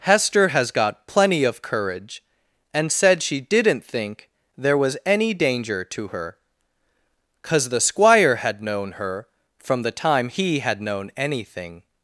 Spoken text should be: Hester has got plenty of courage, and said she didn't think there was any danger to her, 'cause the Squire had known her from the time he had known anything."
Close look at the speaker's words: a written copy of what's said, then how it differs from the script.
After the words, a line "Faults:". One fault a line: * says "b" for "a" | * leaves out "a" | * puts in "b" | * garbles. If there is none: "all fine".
Hester has got plenty of courage, and said she didn't think there was any danger to her, 'cause the Squire had known her from the time he had known anything."
Faults:
all fine